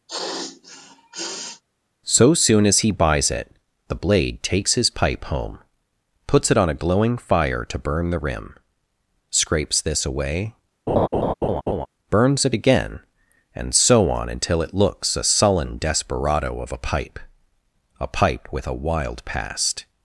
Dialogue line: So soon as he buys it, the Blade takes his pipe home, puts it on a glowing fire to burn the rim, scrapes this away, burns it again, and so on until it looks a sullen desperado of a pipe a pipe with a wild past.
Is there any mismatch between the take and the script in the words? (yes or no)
no